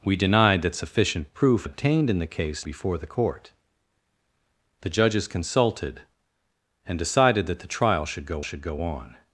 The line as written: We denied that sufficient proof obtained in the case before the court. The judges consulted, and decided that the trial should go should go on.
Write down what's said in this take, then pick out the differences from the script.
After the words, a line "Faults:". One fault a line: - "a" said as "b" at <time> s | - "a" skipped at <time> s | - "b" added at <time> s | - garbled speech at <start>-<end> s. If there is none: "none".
We denied that sufficient proof obtained in the case before the court. The judges consulted, and decided that the trial should go should go on.
Faults:
none